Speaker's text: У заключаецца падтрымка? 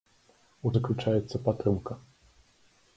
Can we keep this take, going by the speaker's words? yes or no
yes